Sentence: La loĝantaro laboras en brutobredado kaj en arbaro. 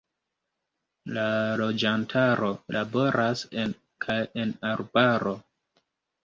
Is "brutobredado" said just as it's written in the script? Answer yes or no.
no